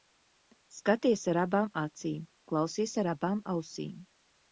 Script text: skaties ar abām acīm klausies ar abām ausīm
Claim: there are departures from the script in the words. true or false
false